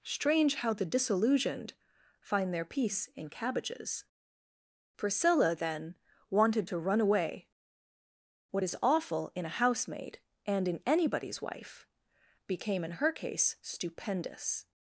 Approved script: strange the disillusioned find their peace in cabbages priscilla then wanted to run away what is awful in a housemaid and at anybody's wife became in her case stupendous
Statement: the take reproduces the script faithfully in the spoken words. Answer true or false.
false